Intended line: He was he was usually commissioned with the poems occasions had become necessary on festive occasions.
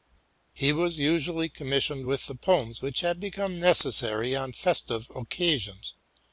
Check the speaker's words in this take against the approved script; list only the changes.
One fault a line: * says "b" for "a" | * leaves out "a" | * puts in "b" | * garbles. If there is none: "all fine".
* leaves out "he was"
* says "which" for "occasions"